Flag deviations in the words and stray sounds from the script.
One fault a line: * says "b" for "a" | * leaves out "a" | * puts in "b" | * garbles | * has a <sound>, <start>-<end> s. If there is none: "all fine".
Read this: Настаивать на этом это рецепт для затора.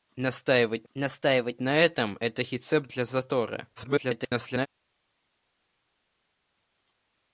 * puts in "настаивать"
* garbles